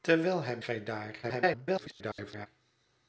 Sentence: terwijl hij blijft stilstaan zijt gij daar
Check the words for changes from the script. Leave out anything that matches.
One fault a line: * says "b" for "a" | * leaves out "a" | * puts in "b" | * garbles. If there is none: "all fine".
* leaves out "blijft stilstaan zijt"
* garbles